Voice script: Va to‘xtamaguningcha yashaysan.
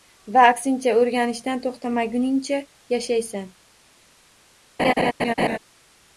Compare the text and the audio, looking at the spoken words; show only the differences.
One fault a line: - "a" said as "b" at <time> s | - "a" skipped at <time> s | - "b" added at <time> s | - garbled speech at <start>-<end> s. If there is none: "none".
- "aksincha o‘rganishdan" added at 0.5 s